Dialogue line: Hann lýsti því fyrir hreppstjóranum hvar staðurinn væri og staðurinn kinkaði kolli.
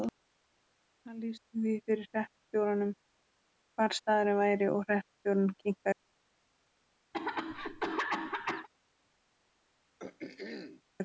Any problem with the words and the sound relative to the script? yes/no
yes